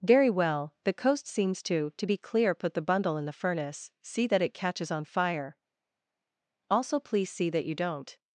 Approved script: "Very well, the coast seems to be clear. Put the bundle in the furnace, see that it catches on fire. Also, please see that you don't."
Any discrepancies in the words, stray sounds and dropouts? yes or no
yes